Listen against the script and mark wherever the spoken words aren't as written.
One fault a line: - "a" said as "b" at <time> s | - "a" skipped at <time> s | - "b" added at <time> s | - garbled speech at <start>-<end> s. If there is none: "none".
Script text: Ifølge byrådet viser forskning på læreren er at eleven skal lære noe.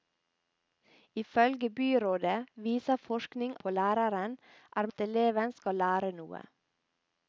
none